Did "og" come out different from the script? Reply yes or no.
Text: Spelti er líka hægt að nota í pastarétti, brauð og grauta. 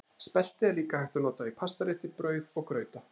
no